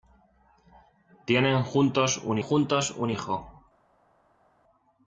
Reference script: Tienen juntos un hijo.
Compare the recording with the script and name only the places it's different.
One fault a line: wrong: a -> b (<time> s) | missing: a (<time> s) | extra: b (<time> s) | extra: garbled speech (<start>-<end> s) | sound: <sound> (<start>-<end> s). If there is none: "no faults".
extra: juntos un (2.4 s)